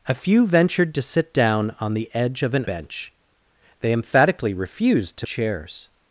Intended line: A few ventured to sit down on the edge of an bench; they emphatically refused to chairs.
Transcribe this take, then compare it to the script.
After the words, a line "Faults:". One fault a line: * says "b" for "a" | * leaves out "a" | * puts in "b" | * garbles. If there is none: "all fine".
A few ventured to sit down on the edge of an bench; they emphatically refused to chairs.
Faults:
all fine